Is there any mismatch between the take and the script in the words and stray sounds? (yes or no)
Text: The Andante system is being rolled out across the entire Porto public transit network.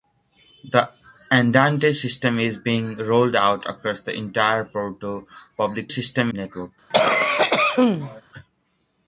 yes